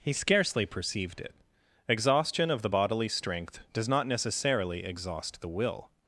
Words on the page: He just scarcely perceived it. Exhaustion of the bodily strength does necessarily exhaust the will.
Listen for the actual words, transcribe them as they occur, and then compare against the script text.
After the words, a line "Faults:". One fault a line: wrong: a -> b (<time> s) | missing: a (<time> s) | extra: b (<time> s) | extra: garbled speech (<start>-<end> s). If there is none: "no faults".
He scarcely perceived it. Exhaustion of the bodily strength does not necessarily exhaust the will.
Faults:
missing: just (0.1 s)
extra: not (3.9 s)